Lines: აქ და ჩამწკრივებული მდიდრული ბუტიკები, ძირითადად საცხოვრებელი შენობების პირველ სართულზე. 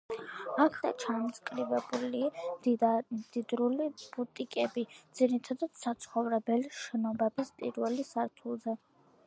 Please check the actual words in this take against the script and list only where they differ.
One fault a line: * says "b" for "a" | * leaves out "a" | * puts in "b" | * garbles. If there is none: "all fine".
all fine